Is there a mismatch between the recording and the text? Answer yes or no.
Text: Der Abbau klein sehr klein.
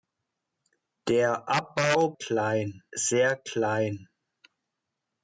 no